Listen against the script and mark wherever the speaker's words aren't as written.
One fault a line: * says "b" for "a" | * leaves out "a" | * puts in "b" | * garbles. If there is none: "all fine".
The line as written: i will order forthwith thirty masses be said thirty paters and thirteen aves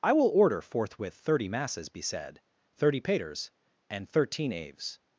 all fine